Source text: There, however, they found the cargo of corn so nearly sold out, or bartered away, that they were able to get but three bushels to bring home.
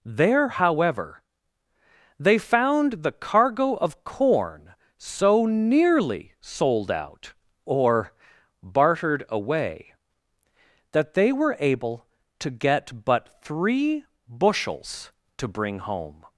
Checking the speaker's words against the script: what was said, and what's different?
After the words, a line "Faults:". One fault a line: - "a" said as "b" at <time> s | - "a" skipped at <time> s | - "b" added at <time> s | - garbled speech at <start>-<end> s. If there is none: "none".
There, however, they found the cargo of corn so nearly sold out, or bartered away, that they were able to get but three bushels to bring home.
Faults:
none